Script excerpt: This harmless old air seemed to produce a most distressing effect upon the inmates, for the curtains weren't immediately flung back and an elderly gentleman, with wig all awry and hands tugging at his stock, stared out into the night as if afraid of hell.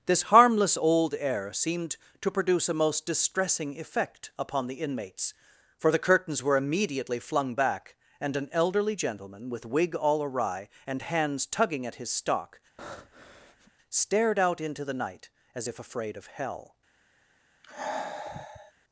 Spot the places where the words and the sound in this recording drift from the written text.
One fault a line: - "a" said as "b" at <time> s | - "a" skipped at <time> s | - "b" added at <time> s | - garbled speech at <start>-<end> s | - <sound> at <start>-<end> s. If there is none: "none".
- "weren't" said as "were" at 6.4 s
- breath at 12.8-13.7 s
- sigh at 17.6-18.7 s